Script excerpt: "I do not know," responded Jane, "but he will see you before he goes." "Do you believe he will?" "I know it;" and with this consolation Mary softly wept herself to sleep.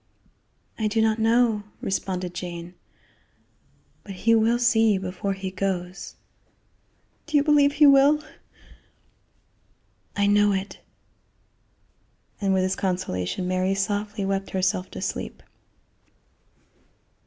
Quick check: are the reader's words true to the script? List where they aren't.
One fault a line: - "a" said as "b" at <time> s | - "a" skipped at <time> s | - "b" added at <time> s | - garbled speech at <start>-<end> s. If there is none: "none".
none